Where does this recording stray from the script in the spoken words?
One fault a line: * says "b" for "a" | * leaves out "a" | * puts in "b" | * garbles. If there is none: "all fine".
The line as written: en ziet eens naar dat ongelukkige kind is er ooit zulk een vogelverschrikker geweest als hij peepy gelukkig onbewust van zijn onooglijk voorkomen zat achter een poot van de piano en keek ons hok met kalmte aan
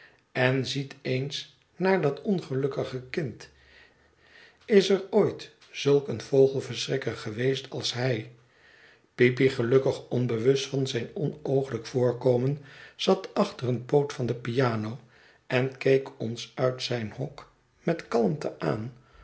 * puts in "uit zijn"